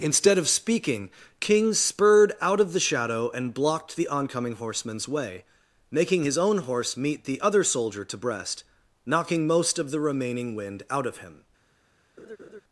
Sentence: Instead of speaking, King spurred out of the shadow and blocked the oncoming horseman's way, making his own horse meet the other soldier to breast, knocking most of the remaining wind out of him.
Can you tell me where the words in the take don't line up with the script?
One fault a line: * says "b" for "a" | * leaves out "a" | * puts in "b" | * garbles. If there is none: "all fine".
all fine